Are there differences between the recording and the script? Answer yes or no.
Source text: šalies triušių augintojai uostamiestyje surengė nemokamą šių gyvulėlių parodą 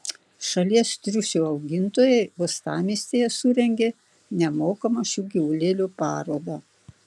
no